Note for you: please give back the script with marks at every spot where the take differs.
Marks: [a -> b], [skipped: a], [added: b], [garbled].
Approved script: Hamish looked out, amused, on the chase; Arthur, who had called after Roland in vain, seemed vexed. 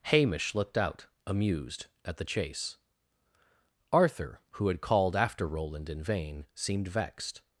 Hamish looked out, amused, [on -> at] the chase; Arthur, who had called after Roland in vain, seemed vexed.